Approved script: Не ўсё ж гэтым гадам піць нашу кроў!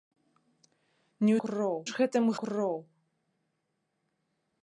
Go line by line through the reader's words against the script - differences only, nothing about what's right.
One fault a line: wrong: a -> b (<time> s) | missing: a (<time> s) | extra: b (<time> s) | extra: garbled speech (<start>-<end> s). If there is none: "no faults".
wrong: ўсё -> кроў (1.5 s)
missing: гадам піць нашу (2.3 s)